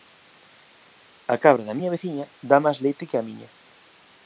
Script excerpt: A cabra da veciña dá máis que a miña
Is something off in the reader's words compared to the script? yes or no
yes